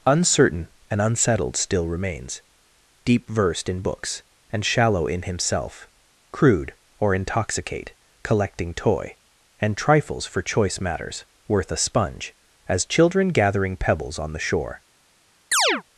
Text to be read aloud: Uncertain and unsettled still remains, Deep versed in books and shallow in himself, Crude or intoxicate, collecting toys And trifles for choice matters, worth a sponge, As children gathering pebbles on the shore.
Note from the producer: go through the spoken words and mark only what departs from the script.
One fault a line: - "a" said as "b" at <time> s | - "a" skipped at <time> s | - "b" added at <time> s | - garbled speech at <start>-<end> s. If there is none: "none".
- "toys" said as "toy" at 8.7 s